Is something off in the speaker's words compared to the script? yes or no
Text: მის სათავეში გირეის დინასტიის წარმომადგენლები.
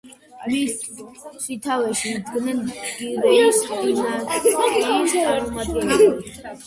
yes